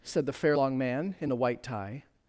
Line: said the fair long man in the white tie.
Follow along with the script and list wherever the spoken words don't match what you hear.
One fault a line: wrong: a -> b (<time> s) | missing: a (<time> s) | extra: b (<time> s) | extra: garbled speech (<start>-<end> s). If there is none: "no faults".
no faults